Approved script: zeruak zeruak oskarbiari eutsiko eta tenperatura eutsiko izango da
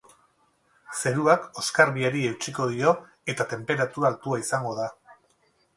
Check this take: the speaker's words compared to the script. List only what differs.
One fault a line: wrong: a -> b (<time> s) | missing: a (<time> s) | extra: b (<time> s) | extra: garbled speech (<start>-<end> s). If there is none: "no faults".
missing: zeruak (1.4 s)
extra: dio (2.7 s)
wrong: eutsiko -> altua (4.1 s)